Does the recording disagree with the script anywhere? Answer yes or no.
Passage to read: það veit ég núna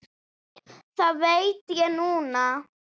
no